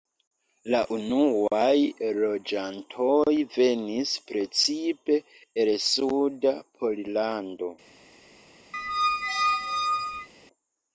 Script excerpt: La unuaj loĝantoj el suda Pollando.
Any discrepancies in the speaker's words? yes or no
yes